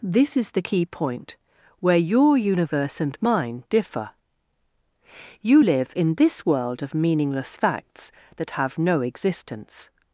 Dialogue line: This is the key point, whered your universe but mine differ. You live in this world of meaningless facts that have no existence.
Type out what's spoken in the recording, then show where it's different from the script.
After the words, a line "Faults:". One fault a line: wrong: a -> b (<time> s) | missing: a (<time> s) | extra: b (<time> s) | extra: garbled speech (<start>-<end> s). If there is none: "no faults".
This is the key point, where your universe and mine differ. You live in this world of meaningless facts that have no existence.
Faults:
wrong: whered -> where (1.8 s)
wrong: but -> and (3.0 s)